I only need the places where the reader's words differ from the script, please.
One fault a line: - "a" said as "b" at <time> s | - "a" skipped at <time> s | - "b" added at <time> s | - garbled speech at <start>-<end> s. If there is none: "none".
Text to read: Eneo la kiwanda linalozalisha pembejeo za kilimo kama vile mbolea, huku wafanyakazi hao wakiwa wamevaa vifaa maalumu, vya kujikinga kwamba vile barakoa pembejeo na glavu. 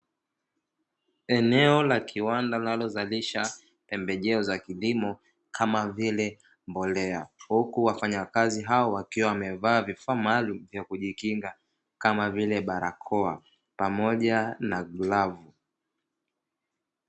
- "kwamba" said as "kama" at 12.0 s
- "pembejeo" said as "pamoja" at 13.8 s